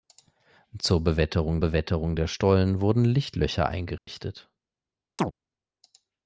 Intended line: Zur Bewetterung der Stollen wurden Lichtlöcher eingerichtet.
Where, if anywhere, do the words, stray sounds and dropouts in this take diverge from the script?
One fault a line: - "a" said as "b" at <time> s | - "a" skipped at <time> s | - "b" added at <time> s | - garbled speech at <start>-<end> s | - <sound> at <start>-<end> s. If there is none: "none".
- "Bewetterung" added at 1.6 s
- dropout at 4.0-4.1 s
- chirp at 5.2-5.3 s